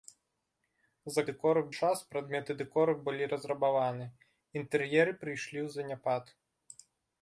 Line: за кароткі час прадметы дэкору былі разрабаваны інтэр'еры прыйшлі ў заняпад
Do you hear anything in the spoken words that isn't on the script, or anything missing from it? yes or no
yes